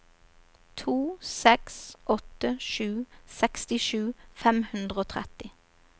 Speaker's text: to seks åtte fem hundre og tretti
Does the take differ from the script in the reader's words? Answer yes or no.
yes